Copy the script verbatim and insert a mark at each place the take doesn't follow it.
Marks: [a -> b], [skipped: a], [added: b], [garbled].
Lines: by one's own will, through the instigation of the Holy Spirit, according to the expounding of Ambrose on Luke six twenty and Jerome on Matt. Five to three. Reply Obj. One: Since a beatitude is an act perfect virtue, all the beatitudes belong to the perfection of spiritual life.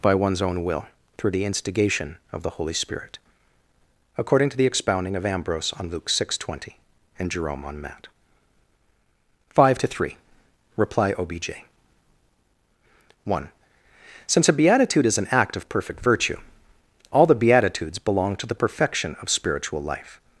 by one's own will, through the instigation of the Holy Spirit, according to the expounding of Ambrose on Luke six twenty and Jerome on Matt. Five to three. Reply Obj. One: Since a beatitude is an act [added: of] perfect virtue, all the beatitudes belong to the perfection of spiritual life.